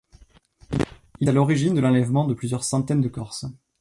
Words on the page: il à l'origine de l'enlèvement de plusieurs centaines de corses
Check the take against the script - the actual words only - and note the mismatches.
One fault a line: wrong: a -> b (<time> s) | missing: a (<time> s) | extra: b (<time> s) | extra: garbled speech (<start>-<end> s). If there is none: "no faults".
no faults